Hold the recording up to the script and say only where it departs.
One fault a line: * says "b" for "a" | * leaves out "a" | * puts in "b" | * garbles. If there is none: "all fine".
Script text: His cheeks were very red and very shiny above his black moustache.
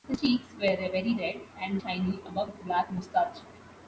* leaves out "very"